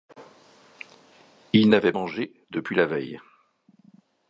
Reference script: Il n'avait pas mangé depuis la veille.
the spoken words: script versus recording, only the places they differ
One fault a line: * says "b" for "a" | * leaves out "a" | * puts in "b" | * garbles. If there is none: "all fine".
* leaves out "pas"